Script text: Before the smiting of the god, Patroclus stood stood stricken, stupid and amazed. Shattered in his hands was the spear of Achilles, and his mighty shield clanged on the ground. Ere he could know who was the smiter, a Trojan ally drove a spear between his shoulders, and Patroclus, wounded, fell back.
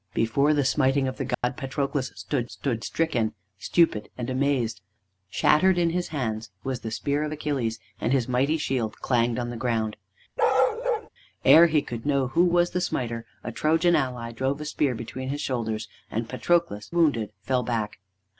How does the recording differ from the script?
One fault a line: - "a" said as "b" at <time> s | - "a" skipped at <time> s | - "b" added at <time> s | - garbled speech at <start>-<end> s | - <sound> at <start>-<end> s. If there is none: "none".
- dropout at 1.3-1.4 s
- bark at 10.4-11.1 s